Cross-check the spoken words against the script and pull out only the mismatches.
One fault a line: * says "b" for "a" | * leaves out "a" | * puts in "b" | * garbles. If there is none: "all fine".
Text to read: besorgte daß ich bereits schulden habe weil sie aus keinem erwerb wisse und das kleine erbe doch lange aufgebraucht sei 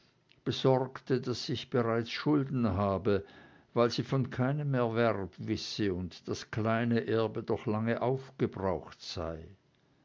* says "von" for "aus"